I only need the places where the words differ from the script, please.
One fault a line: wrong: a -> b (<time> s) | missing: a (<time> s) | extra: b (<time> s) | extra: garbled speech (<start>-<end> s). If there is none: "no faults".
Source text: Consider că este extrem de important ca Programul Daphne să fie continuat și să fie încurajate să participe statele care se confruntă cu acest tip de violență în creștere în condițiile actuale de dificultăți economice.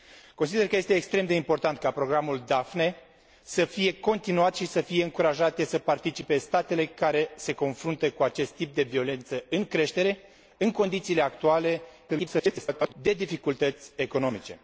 extra: garbled speech (12.1-12.9 s)